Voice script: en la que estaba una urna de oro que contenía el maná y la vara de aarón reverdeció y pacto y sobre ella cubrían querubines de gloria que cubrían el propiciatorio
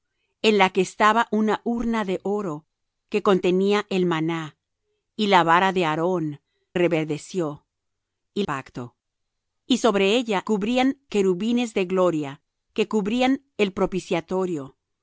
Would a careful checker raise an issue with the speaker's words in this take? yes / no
no